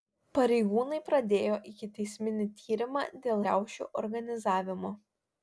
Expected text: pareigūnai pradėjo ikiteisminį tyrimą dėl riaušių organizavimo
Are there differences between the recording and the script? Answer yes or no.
no